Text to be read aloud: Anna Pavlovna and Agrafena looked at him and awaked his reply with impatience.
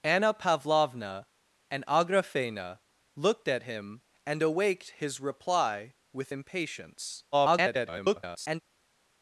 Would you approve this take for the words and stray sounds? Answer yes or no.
no